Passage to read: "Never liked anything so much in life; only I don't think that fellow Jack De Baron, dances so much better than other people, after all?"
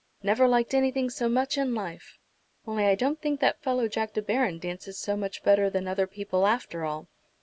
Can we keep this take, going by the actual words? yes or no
yes